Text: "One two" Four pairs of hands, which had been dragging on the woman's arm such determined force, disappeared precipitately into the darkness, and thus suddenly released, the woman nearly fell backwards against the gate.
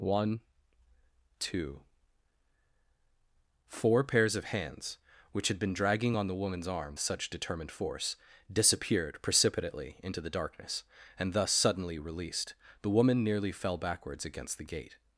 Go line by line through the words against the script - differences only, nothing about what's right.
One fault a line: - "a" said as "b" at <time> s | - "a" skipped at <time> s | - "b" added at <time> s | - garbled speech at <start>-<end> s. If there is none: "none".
none